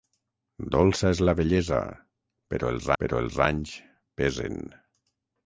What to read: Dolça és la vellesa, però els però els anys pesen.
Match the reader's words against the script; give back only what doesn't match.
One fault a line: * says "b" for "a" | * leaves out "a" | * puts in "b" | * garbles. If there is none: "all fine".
all fine